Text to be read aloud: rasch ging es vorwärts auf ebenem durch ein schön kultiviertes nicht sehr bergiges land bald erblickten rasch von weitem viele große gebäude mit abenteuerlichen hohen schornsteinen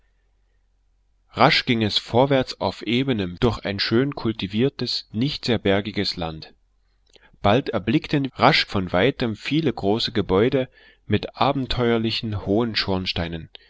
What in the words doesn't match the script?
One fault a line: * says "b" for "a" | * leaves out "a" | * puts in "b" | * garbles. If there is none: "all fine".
all fine